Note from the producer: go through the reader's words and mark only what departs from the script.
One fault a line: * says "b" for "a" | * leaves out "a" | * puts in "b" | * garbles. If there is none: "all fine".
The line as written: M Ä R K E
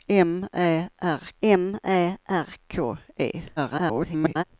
* puts in "m Ä R"
* garbles